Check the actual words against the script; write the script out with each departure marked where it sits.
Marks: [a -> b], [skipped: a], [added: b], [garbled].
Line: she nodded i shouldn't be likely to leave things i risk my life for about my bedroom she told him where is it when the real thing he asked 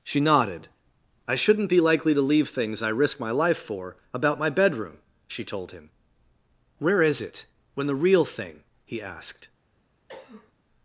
she nodded i shouldn't be likely to leave things i risk my life for about my bedroom she told him where is it when the real thing he asked